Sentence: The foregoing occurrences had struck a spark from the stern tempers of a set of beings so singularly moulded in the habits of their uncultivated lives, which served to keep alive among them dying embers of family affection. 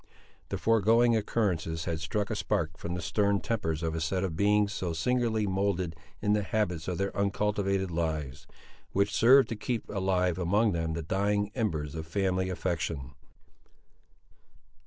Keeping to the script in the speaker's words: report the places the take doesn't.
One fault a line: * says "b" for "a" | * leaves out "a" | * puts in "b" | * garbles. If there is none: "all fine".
* puts in "the"